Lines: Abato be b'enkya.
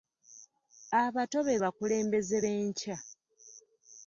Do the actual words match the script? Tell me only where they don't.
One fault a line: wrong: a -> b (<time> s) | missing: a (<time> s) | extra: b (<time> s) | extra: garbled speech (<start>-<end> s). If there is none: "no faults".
extra: bakulembeze (1.6 s)